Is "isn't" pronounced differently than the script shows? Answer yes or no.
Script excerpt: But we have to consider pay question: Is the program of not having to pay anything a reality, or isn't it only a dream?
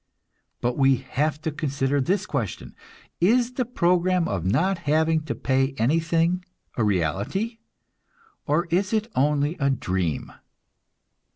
yes